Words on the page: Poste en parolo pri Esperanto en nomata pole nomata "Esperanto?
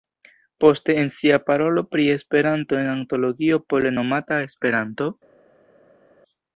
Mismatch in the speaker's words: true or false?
true